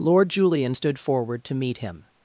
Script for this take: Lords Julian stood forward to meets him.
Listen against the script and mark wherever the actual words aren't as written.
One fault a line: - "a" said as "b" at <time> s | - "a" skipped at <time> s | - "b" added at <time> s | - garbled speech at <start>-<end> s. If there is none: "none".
- "Lords" said as "Lord" at 0.0 s
- "meets" said as "meet" at 1.5 s